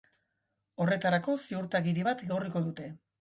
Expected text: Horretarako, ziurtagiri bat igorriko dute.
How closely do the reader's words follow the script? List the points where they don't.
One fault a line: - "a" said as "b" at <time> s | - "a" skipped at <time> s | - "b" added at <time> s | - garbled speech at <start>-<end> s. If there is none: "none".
none